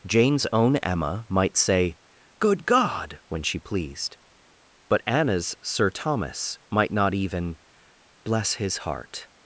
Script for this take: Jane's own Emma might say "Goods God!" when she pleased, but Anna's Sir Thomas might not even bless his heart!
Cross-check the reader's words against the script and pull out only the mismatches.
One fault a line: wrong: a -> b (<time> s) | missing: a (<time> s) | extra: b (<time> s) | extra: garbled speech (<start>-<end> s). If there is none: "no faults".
wrong: Goods -> Good (2.4 s)